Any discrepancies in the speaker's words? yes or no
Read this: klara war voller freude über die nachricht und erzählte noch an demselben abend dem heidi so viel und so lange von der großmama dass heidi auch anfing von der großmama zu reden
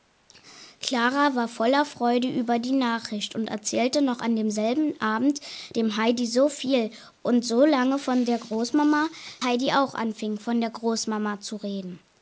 yes